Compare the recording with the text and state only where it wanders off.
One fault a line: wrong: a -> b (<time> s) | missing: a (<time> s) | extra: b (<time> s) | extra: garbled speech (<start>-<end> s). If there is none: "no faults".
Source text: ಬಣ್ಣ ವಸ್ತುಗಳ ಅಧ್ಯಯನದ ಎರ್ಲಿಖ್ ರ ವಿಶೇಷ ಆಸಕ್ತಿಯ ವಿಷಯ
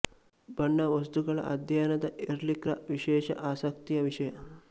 no faults